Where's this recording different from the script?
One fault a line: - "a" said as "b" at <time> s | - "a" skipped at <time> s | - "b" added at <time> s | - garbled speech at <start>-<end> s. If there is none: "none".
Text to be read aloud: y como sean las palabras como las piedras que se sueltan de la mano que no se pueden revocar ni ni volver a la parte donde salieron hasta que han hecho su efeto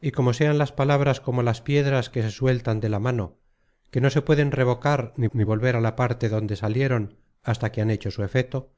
none